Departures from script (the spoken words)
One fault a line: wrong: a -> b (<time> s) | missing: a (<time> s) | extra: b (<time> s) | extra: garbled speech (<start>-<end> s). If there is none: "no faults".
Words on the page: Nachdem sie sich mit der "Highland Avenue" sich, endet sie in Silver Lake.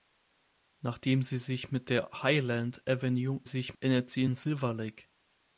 no faults